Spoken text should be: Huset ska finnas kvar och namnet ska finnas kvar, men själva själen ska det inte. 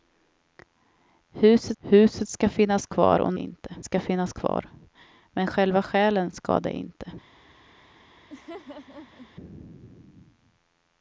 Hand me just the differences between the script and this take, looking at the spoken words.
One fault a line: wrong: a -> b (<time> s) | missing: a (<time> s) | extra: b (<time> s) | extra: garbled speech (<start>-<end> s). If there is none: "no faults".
extra: huset (1.8 s)
wrong: namnet -> inte (3.3 s)